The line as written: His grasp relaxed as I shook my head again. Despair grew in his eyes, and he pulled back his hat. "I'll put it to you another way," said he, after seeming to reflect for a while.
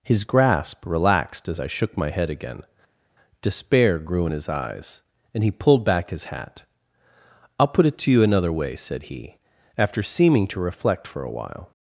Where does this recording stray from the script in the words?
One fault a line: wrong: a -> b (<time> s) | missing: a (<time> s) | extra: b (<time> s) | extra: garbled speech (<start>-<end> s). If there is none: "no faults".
no faults